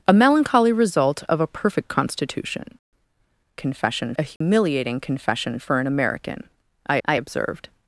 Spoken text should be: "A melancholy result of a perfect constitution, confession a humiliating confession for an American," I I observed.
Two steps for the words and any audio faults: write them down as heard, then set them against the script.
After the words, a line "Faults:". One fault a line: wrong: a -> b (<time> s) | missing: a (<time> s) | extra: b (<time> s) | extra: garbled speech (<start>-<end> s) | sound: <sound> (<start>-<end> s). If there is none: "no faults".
"A melancholy result of a perfect constitution, confession a humiliating confession for an American," I I observed.
Faults:
sound: dropout (4.4-4.4 s)